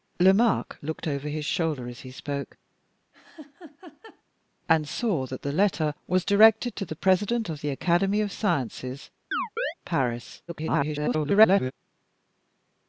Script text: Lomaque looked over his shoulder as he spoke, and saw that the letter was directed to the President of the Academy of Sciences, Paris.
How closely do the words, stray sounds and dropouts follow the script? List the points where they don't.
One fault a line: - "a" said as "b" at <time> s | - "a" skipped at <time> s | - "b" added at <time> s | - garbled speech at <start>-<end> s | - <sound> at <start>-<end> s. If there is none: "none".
- laugh at 3.1-4.2 s
- chirp at 9.3-9.7 s
- garbled speech at 10.5-11.7 s